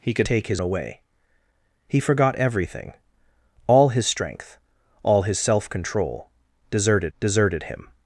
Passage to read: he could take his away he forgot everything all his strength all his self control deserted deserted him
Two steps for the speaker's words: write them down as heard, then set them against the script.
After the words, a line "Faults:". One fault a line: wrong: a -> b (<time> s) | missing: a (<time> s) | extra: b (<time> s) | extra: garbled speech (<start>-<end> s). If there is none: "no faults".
he could take his away he forgot everything all his strength all his self control deserted deserted him
Faults:
no faults